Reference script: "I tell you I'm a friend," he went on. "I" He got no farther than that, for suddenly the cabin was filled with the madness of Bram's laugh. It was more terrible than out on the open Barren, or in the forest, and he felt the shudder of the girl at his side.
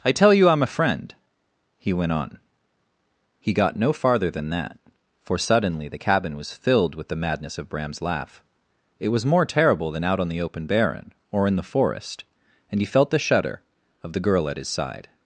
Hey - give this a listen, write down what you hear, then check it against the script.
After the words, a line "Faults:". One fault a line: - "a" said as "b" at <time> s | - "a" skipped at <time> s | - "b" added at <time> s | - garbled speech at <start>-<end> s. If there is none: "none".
"I tell you I'm a friend," he went on" He got no farther than that, for suddenly the cabin was filled with the madness of Bram's laugh. It was more terrible than out on the open Barren, or in the forest, and he felt the shudder of the girl at his side.
Faults:
- "I" skipped at 2.4 s